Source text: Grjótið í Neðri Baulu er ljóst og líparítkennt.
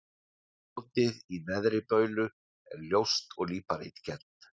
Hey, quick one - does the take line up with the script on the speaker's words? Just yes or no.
yes